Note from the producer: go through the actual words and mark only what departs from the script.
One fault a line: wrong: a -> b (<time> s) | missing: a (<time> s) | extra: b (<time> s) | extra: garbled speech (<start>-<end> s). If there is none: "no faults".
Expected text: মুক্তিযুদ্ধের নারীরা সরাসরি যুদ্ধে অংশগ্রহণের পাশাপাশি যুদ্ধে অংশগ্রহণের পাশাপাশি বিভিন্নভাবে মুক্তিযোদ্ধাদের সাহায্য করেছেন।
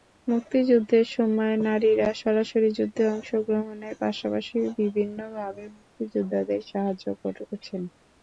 extra: সময় (1.1 s)
missing: যুদ্ধে অংশগ্রহণের পাশাপাশি (4.5 s)